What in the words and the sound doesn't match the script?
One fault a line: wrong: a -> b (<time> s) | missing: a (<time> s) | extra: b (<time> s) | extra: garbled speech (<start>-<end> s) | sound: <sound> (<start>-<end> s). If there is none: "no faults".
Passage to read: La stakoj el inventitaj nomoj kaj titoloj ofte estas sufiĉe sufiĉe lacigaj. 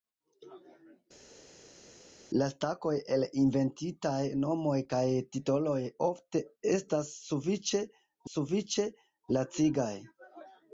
no faults